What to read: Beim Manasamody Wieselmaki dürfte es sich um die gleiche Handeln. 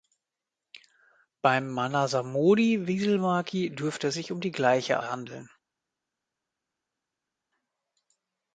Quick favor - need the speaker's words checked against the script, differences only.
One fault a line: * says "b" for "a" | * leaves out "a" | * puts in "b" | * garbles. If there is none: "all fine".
all fine